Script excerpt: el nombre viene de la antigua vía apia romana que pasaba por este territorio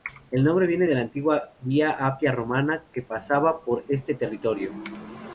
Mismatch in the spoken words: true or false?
false